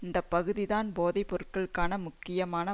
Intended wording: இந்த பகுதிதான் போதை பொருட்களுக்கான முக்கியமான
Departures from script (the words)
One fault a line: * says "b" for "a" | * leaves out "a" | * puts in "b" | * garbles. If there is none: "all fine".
all fine